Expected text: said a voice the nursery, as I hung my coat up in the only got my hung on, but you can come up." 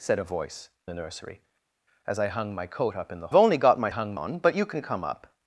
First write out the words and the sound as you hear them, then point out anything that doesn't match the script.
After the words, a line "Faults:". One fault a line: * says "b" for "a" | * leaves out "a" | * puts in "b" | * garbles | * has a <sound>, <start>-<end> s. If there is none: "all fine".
said a voice the nursery, as I hung my coat up in the only got my hung on, but you can come up."
Faults:
all fine